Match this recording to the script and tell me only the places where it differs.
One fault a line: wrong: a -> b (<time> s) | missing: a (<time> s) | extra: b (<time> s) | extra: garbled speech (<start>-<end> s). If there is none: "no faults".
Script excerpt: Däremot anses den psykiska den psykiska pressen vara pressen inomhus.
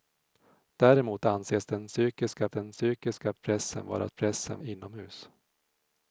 no faults